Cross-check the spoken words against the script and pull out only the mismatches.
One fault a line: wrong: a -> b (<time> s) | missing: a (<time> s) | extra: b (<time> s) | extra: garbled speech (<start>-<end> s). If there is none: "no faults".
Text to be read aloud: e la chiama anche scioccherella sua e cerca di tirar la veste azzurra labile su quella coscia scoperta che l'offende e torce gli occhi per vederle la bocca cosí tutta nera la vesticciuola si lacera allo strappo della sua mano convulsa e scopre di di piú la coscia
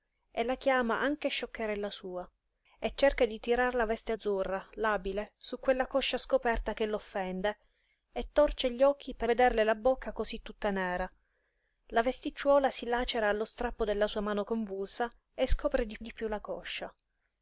no faults